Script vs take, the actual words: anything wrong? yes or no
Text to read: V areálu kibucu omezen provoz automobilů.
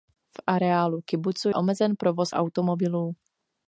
no